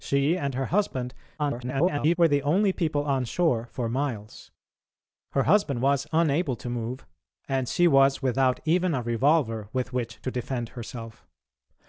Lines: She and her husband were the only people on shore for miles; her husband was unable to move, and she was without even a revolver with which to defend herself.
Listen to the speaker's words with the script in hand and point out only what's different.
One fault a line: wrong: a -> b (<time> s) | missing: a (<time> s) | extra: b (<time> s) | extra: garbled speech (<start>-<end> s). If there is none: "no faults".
extra: garbled speech (1.4-2.2 s)